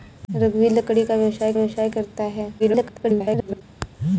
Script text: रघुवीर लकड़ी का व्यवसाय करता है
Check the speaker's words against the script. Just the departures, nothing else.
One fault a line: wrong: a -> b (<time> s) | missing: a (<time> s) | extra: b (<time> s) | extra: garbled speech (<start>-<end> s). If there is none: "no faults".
extra: व्यवसाय (1.5 s)
extra: garbled speech (2.6-3.6 s)